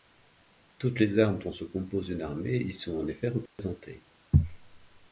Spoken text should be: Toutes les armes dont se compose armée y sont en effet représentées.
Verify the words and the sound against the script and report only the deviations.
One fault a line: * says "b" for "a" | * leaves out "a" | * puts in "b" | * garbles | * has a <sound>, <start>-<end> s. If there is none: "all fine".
* puts in "une"
* has a dropout, 3.5-3.6 s